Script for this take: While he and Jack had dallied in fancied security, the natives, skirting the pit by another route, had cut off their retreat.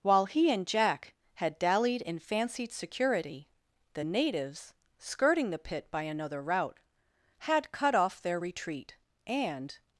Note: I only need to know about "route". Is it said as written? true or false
true